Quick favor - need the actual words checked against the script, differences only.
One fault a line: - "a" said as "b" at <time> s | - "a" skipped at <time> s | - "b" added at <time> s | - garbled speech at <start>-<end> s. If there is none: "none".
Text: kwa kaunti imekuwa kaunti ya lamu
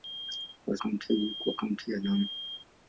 none